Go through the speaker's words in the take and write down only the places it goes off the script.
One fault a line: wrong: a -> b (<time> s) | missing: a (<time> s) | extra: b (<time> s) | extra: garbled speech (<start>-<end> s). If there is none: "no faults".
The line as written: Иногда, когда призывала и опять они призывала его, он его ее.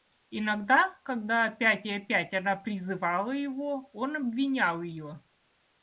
wrong: призывала -> опять (1.4 s)
wrong: они -> она (2.3 s)
wrong: его -> обвинял (4.2 s)